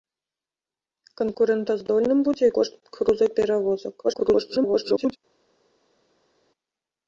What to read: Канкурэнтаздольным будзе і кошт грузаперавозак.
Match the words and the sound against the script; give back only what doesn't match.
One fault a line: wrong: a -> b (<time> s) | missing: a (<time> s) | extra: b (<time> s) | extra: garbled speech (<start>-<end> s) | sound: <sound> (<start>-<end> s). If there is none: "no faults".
extra: garbled speech (4.0-5.2 s)